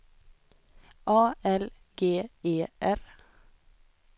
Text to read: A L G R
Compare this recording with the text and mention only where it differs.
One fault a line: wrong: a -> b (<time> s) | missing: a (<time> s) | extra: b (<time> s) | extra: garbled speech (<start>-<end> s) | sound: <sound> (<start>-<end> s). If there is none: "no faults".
extra: E (2.4 s)